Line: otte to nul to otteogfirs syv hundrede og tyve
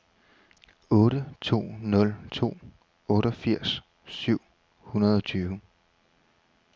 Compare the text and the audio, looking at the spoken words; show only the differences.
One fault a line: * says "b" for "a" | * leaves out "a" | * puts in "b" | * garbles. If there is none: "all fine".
all fine